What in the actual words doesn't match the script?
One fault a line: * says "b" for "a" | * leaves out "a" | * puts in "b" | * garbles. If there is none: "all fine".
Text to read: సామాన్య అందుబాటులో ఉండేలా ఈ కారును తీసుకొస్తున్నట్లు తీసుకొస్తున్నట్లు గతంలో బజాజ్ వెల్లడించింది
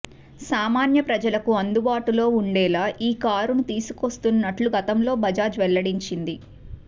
* puts in "ప్రజలకు"
* leaves out "తీసుకొస్తున్నట్లు"